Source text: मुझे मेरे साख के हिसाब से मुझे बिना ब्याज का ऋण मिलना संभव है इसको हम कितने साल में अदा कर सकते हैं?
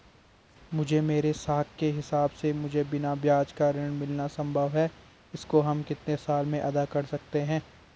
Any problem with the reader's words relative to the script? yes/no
no